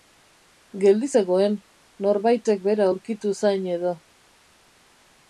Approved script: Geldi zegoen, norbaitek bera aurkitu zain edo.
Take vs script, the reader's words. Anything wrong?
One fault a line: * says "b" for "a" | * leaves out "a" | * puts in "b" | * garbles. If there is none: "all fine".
all fine